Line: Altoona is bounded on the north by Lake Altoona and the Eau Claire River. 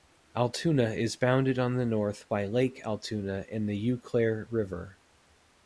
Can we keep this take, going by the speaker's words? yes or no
yes